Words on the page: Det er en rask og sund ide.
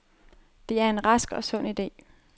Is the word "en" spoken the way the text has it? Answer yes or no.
yes